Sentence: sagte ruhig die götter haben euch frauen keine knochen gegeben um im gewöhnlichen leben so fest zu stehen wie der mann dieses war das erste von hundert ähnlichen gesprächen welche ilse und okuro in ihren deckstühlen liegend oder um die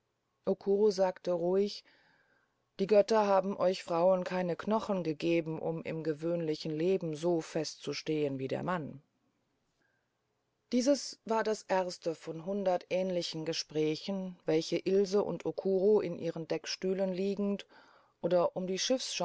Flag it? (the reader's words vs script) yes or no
no